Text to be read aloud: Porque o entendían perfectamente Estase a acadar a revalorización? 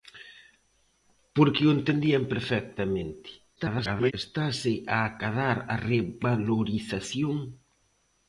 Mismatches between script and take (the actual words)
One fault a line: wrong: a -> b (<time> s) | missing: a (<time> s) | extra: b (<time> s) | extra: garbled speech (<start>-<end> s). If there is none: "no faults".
extra: garbled speech (3.6-4.1 s)